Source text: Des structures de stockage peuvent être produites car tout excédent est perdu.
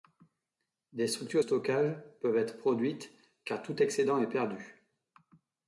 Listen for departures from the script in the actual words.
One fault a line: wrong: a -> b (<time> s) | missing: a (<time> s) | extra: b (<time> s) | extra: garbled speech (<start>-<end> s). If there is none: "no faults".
missing: de (1.4 s)